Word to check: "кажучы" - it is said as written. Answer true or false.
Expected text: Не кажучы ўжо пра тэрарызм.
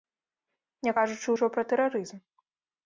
true